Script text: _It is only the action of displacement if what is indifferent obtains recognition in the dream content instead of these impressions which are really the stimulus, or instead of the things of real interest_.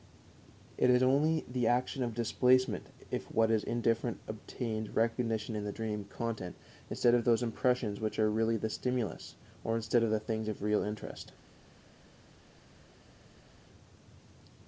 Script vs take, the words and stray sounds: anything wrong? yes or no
yes